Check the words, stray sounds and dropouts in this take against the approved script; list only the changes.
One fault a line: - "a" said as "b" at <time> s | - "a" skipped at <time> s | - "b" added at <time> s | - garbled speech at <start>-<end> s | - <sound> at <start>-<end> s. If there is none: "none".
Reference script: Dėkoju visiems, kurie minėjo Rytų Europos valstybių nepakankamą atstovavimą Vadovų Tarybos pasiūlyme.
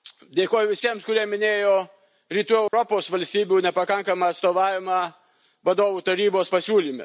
- dropout at 2.7-2.7 s